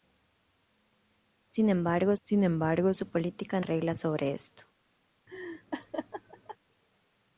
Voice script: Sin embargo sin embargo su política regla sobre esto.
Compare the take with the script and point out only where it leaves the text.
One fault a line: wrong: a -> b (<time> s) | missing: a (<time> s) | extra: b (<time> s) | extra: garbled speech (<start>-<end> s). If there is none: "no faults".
no faults